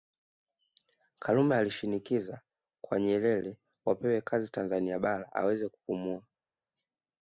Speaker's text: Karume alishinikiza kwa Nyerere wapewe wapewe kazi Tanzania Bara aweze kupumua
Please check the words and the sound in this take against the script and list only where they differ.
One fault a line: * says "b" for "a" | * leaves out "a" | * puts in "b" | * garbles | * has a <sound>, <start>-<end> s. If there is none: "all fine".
* leaves out "wapewe"